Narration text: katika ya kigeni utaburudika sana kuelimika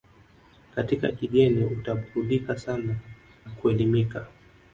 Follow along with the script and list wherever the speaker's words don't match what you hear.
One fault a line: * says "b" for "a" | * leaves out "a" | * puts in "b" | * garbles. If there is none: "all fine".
all fine